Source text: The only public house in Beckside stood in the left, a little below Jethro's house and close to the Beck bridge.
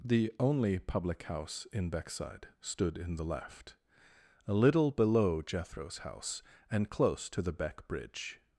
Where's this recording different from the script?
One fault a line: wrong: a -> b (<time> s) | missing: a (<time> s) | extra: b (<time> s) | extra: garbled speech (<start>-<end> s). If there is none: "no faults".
no faults